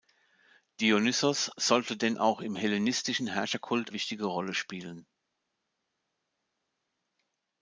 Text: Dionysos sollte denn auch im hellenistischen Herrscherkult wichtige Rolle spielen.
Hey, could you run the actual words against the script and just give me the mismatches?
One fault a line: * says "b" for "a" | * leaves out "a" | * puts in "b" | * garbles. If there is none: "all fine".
all fine